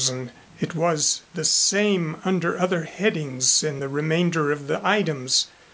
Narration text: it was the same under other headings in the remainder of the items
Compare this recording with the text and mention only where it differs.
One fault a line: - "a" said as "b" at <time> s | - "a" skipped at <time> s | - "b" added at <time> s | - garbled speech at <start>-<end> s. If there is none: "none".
none